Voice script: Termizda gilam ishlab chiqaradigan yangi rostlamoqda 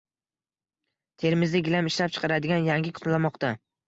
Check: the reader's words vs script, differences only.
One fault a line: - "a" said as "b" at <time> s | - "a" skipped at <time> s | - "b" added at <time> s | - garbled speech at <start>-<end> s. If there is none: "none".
none